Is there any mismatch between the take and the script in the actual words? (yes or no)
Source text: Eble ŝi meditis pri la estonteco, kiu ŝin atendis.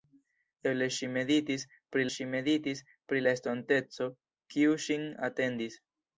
yes